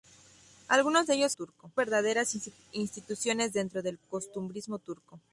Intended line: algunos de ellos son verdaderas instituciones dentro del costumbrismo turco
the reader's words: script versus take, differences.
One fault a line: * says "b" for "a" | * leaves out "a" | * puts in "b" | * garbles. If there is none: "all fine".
* says "turco" for "son"